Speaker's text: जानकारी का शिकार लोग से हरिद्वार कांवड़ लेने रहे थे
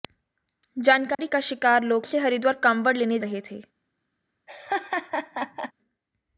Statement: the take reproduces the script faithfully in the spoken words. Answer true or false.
true